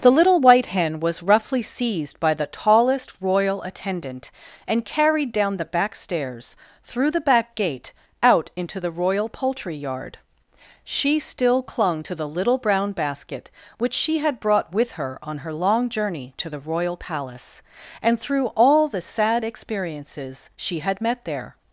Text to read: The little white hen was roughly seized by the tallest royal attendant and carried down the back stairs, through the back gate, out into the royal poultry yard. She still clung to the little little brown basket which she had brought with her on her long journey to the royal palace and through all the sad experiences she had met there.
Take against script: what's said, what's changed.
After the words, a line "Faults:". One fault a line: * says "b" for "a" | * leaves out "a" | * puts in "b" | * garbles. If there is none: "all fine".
The little white hen was roughly seized by the tallest royal attendant and carried down the back stairs, through the back gate, out into the royal poultry yard. She still clung to the little brown basket which she had brought with her on her long journey to the royal palace and through all the sad experiences she had met there.
Faults:
* leaves out "little"